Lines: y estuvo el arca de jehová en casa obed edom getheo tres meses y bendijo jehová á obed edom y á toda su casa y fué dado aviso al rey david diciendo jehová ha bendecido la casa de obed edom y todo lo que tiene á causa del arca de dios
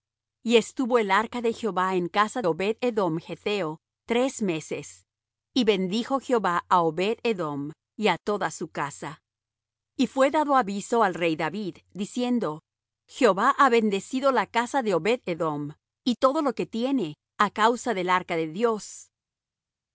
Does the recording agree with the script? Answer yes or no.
yes